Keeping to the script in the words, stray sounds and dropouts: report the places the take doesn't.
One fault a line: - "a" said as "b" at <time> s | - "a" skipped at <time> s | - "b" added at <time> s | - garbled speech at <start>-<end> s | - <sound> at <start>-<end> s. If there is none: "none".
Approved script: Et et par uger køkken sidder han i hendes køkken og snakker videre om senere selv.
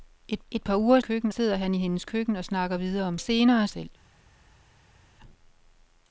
none